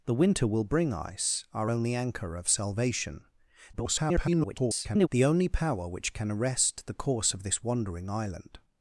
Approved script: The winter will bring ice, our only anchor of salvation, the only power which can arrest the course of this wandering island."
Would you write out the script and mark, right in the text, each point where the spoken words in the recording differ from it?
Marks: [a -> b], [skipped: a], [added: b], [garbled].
The winter will bring ice, our only anchor of salvation, [garbled] the only power which can arrest the course of this wandering island."